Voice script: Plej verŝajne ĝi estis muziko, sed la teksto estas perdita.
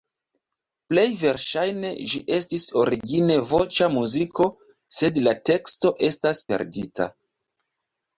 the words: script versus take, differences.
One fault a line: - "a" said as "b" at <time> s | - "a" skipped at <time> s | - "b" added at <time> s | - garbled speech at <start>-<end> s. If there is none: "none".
- "origine voĉa" added at 2.8 s